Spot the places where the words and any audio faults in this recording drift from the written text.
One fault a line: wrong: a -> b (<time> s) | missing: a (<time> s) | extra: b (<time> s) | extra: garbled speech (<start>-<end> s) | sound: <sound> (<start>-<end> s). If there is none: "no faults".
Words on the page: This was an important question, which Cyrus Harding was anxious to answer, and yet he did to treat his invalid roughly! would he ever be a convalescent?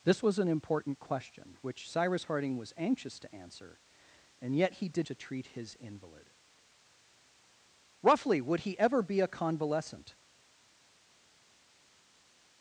no faults